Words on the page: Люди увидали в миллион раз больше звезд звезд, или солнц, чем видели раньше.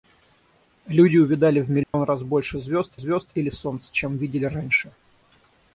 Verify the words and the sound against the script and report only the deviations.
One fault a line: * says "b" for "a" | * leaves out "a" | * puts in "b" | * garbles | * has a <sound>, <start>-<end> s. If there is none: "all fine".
* has a dropout, 1.8-1.9 s